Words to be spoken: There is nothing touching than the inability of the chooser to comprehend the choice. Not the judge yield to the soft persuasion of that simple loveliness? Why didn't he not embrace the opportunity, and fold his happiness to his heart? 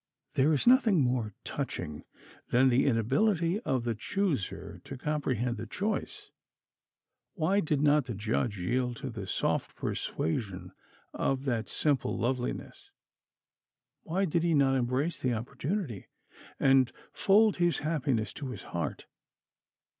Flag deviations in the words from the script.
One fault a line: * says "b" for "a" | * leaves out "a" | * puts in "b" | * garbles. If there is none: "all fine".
* puts in "more"
* puts in "Why did"
* says "did" for "didn't"